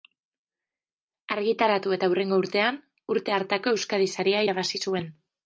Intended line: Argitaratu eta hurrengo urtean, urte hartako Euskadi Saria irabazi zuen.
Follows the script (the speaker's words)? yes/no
yes